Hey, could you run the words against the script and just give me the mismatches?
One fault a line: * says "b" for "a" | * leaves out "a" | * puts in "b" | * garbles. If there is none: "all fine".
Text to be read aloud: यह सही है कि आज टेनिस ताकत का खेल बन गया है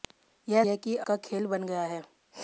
* leaves out "सही"
* leaves out "आज टेनिस ताकत"